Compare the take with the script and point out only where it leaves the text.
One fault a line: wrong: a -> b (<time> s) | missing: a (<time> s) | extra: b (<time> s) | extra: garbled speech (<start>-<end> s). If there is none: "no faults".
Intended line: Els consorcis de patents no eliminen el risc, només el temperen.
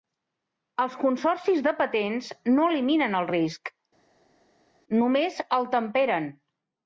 no faults